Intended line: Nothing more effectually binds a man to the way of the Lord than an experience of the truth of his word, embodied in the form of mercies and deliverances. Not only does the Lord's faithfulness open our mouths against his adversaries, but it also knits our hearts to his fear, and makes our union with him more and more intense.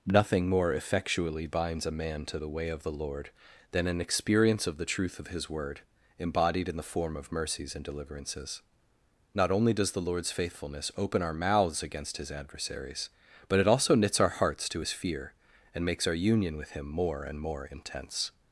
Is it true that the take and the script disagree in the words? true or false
false